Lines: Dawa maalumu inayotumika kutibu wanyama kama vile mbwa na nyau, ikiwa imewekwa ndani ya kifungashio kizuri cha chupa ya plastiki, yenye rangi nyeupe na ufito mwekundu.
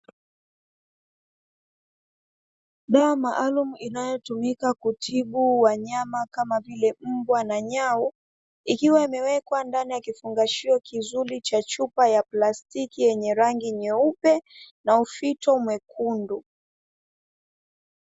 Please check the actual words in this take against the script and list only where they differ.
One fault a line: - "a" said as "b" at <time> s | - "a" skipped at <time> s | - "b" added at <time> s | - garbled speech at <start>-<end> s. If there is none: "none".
none